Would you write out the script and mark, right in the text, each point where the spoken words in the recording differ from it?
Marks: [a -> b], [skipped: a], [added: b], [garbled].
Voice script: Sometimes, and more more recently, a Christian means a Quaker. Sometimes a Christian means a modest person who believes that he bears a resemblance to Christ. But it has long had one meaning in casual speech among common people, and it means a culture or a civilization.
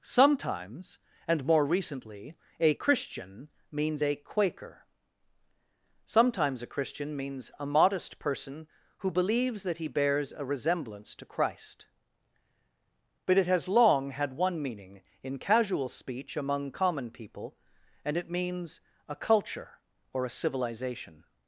Sometimes, and more [skipped: more] recently, a Christian means a Quaker. Sometimes a Christian means a modest person who believes that he bears a resemblance to Christ. But it has long had one meaning in casual speech among common people, and it means a culture or a civilization.